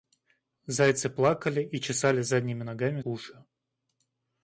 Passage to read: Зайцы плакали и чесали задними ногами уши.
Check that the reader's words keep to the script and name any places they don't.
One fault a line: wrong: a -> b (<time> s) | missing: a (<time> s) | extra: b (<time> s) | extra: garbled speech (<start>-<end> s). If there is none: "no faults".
no faults